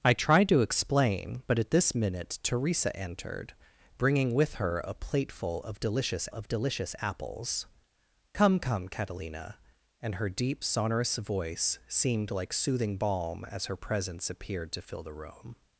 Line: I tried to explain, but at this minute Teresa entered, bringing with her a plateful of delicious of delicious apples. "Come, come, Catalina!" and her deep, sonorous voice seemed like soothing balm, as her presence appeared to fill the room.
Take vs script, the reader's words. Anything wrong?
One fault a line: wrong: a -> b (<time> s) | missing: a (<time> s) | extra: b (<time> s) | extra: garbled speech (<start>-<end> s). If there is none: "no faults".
no faults